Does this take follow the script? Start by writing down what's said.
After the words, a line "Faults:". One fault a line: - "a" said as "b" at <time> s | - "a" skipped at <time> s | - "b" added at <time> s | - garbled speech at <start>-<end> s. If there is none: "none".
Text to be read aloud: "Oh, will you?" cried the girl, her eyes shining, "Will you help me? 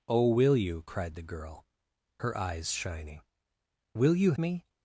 "Oh, will you?" cried the girl, her eyes shining, "Will you me?
Faults:
- "help" skipped at 4.3 s